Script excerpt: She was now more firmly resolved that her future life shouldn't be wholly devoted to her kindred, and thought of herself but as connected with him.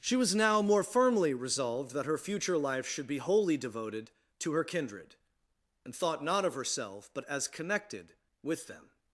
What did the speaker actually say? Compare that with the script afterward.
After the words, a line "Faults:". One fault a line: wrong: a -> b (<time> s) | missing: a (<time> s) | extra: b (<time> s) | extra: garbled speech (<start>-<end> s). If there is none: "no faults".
She was now more firmly resolved that her future life should be wholly devoted to her kindred, and thought not of herself but as connected with them.
Faults:
wrong: shouldn't -> should (2.9 s)
extra: not (6.2 s)
wrong: him -> them (8.7 s)